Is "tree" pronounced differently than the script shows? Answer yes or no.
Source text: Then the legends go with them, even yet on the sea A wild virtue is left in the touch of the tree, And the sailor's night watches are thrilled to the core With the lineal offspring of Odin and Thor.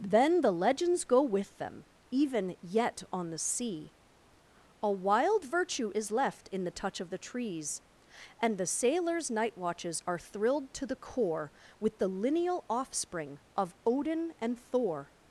yes